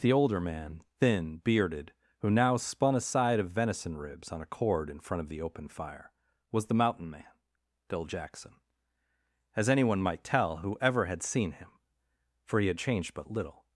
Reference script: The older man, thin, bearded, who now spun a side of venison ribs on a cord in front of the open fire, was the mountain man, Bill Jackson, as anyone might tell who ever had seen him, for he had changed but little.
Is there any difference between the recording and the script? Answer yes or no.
no